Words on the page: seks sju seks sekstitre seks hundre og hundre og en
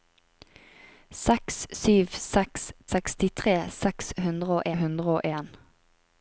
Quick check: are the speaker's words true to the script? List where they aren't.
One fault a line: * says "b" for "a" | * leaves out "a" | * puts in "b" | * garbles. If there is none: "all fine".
all fine